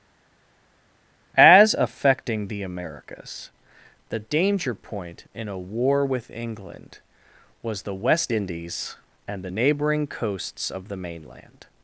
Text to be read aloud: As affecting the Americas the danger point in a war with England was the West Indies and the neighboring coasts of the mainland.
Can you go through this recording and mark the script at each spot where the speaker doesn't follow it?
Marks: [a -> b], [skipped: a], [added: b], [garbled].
As affecting the Americas the danger point in a war with England was the West Indies and the neighboring coasts of the mainland.